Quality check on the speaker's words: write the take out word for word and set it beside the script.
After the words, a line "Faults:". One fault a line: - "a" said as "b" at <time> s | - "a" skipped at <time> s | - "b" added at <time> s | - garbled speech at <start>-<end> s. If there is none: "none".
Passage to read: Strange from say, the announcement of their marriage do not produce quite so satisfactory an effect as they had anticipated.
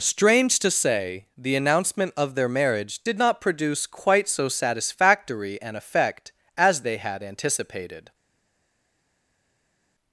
Strange to say, the announcement of their marriage did not produce quite so satisfactory an effect as they had anticipated.
Faults:
- "from" said as "to" at 0.6 s
- "do" said as "did" at 3.0 s